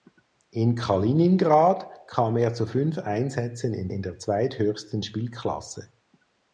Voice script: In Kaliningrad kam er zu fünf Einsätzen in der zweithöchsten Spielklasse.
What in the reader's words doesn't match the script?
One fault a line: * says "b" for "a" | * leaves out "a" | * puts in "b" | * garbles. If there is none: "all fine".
* puts in "in"